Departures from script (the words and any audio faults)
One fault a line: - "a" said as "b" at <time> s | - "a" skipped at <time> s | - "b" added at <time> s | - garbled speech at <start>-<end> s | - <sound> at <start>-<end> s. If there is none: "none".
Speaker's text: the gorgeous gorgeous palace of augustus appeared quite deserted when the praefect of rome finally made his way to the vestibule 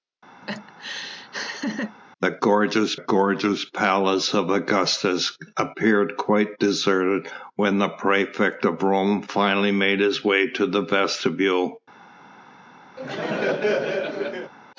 - laugh at 0.4-2.0 s
- laugh at 13.0-14.5 s